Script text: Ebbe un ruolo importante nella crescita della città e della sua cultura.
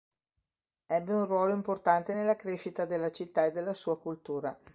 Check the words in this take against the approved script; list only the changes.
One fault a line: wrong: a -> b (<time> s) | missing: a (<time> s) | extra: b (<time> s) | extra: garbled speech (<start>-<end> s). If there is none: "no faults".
no faults